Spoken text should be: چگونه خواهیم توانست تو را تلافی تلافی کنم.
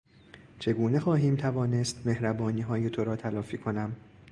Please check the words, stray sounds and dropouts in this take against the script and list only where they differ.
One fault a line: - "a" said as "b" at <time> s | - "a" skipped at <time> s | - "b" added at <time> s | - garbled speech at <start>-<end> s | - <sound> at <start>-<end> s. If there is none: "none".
- "مهربانیهای" added at 2.1 s
- "تلافی" skipped at 3.6 s